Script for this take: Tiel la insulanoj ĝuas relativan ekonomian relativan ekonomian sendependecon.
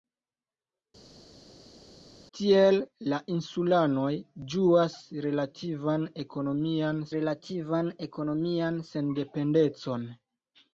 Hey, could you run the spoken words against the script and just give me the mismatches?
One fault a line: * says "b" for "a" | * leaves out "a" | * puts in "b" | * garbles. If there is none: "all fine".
all fine